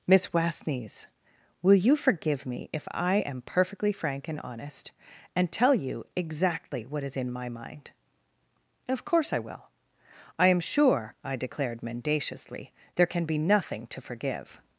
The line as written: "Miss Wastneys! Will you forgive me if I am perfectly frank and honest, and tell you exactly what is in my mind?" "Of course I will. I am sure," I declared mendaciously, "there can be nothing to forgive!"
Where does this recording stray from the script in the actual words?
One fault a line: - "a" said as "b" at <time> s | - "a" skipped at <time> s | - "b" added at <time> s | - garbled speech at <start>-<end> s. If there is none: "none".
none